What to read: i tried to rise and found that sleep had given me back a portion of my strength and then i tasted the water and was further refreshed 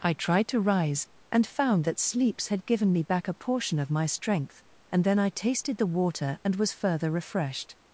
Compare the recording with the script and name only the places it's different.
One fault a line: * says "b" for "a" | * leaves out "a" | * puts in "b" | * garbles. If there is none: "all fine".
* says "sleeps" for "sleep"